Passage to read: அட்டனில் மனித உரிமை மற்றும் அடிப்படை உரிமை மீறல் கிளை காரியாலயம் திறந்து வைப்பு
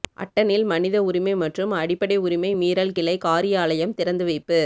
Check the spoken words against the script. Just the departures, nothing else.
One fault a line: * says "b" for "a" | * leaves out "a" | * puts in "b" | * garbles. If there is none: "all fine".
all fine